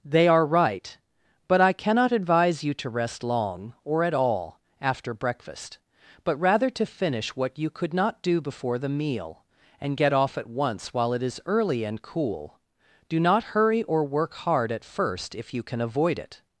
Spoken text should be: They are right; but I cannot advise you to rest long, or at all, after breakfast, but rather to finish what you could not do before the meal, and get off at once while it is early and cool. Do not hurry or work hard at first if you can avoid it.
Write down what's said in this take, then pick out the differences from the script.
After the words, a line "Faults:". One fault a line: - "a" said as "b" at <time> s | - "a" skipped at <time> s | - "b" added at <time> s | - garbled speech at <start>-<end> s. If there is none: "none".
They are right; but I cannot advise you to rest long, or at all, after breakfast, but rather to finish what you could not do before the meal, and get off at once while it is early and cool. Do not hurry or work hard at first if you can avoid it.
Faults:
none